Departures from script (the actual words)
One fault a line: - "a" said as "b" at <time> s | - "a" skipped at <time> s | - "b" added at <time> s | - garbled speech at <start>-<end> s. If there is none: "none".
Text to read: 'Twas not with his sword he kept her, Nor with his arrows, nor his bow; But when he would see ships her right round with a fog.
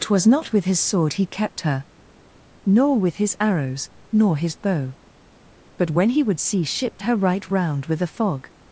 none